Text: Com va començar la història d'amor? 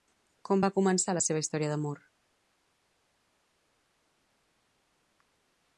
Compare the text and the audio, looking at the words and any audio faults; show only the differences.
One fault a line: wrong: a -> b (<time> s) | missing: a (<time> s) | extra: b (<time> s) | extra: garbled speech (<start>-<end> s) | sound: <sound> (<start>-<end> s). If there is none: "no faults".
extra: seva (1.3 s)